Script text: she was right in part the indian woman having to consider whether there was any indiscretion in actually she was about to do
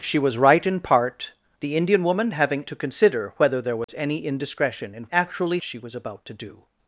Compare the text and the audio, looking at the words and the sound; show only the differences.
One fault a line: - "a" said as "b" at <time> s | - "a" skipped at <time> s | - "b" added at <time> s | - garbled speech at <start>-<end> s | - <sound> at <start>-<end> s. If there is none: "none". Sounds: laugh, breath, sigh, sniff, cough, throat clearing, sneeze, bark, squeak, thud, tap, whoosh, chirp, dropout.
- dropout at 3.8-3.9 s